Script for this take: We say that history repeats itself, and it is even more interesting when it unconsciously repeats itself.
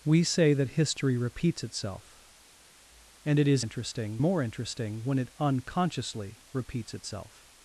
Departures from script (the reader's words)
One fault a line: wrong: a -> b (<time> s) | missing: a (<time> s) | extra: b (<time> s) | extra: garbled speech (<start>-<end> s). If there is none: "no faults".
wrong: even -> interesting (3.6 s)